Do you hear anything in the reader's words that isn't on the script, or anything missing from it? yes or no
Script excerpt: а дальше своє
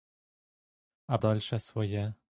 no